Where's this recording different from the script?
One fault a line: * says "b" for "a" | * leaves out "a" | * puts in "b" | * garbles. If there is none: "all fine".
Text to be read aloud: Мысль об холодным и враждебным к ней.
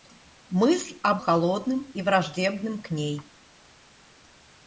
all fine